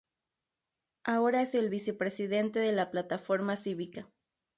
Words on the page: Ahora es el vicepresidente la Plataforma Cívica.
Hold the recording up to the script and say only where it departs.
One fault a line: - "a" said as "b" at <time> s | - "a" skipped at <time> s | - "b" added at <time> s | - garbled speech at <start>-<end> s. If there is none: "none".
- "de" added at 2.6 s